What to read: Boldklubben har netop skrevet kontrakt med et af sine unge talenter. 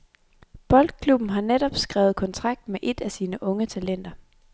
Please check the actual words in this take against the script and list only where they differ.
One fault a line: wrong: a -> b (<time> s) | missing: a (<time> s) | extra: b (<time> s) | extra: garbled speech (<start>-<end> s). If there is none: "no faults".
no faults